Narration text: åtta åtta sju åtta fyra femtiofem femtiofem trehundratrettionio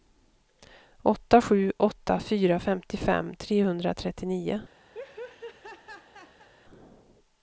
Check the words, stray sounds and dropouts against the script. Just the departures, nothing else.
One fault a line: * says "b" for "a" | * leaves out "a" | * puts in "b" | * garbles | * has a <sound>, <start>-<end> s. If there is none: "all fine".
* leaves out "åtta"
* leaves out "femtiofem"
* has a laugh, 4.9-6.5 s